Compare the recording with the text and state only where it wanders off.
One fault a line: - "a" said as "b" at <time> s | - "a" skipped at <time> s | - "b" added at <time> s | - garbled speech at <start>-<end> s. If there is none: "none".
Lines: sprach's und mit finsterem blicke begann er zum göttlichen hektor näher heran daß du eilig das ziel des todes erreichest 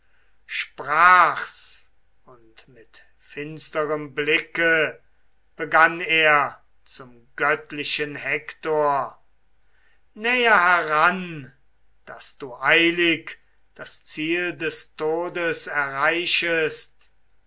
none